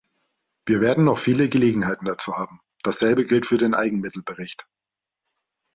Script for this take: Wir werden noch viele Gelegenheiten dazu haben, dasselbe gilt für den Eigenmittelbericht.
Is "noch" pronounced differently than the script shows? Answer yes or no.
no